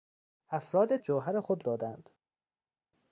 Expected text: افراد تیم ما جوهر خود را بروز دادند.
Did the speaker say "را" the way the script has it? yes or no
no